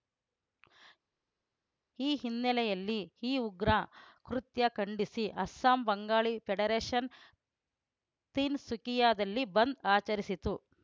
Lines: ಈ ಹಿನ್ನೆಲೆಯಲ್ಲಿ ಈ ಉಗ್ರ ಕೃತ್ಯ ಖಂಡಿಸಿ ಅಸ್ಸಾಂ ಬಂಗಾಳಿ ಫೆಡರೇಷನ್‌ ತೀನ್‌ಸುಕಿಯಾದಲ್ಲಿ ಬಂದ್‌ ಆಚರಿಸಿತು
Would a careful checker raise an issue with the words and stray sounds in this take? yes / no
no